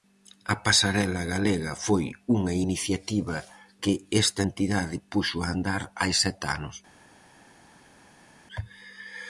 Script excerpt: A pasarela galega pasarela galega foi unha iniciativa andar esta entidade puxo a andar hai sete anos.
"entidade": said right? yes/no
yes